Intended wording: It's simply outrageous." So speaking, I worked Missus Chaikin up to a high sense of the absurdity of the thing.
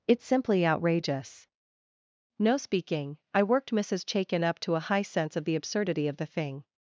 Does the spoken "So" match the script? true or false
false